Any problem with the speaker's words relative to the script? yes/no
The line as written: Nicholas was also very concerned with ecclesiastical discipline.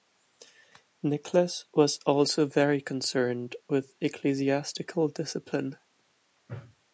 no